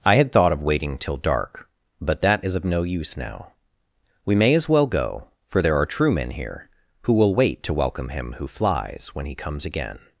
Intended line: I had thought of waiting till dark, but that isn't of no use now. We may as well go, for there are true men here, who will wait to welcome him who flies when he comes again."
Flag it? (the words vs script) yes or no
yes